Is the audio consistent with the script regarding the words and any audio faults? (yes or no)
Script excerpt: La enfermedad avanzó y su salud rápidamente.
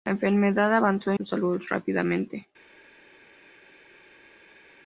yes